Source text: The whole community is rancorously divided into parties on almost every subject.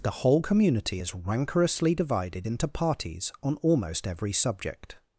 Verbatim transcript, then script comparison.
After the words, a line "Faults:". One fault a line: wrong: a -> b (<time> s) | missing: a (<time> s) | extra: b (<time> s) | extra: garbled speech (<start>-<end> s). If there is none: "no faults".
The whole community is rancorously divided into parties on almost every subject.
Faults:
no faults